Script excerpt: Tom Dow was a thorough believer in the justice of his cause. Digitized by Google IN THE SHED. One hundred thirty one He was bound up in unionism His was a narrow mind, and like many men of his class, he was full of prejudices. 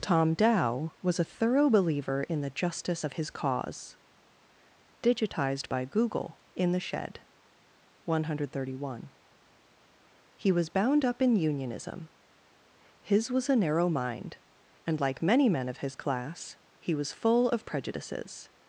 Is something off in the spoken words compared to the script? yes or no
no